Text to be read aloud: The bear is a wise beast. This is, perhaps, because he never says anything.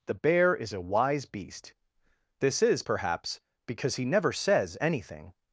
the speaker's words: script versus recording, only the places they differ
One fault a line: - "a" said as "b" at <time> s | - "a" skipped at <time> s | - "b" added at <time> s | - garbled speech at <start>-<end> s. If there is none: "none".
none